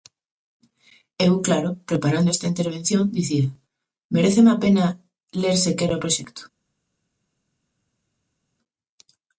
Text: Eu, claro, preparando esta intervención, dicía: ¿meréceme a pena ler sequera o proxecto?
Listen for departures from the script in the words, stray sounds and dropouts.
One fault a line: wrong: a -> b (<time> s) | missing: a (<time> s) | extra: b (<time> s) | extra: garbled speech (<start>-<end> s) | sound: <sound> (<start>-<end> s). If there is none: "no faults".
no faults